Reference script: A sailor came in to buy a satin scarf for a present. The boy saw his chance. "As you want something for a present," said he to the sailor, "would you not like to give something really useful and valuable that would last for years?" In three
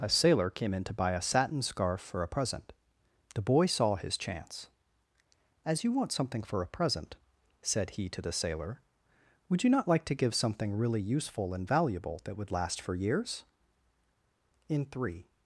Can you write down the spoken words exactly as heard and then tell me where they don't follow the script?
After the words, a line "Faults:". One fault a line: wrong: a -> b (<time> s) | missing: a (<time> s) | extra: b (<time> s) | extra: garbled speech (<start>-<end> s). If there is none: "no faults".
A sailor came in to buy a satin scarf for a present. The boy saw his chance. "As you want something for a present," said he to the sailor, "would you not like to give something really useful and valuable that would last for years?" In three
Faults:
no faults